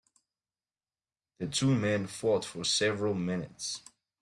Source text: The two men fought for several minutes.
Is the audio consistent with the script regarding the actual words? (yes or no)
yes